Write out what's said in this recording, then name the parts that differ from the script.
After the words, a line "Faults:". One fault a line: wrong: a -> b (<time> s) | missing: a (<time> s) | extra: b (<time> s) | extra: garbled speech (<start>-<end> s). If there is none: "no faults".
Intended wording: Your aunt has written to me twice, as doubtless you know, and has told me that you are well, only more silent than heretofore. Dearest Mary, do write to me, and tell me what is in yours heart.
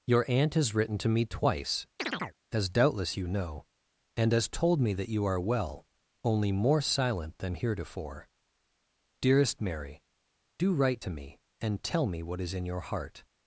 Your aunt has written to me twice, as doubtless you know, and has told me that you are well, only more silent than heretofore. Dearest Mary, do write to me, and tell me what is in your heart.
Faults:
wrong: yours -> your (12.6 s)